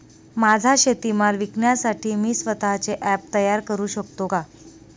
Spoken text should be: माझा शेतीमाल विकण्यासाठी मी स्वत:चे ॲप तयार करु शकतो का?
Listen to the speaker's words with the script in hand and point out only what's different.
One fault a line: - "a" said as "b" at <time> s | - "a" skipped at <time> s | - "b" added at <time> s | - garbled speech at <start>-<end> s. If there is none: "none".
none